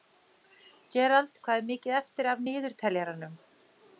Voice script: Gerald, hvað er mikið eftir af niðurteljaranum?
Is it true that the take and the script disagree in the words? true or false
false